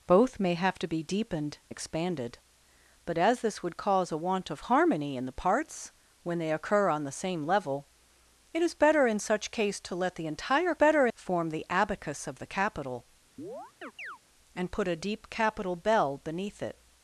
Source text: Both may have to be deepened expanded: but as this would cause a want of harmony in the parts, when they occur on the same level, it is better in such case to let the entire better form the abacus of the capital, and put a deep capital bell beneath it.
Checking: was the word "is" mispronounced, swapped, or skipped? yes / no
no